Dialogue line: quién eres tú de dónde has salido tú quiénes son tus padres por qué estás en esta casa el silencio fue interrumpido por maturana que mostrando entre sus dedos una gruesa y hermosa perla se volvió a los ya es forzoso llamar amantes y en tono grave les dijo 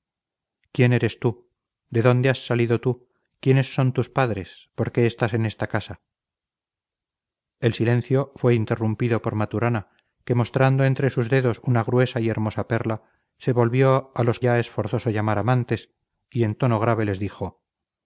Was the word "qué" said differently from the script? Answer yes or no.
no